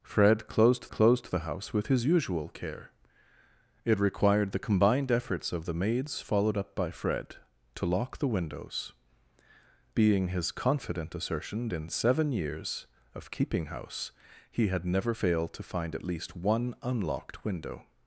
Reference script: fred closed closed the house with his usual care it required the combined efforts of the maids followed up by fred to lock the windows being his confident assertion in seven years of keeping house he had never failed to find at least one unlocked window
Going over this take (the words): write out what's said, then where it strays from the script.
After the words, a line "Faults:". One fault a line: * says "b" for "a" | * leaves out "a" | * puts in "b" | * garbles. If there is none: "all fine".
fred closed closed the house with his usual care it required the combined efforts of the maids followed up by fred to lock the windows being his confident assertion in seven years of keeping house he had never failed to find at least one unlocked window
Faults:
all fine